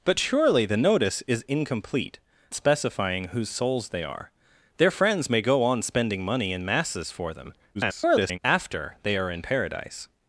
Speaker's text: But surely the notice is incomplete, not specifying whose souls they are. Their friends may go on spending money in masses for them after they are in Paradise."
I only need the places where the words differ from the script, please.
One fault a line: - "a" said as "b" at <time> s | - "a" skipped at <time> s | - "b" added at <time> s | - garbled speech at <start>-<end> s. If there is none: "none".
- "not" skipped at 2.2 s
- garbled speech at 7.7-8.4 s